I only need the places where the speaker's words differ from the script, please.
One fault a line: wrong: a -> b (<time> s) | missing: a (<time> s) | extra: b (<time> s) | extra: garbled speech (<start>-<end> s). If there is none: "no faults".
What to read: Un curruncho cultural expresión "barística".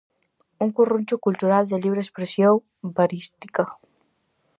extra: de libre (1.7 s)